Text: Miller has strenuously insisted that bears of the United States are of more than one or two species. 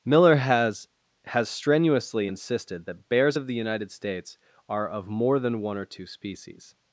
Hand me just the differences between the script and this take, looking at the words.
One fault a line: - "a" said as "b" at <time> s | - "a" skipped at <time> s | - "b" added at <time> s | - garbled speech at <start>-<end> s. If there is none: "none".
- "has" added at 1.2 s